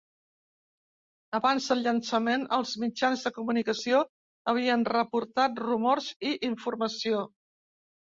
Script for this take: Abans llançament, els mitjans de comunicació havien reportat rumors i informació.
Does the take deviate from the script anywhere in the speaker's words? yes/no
yes